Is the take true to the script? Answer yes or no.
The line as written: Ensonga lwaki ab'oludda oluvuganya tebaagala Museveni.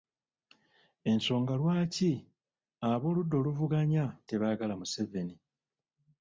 yes